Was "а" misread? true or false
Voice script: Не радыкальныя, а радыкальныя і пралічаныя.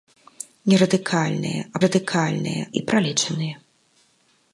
false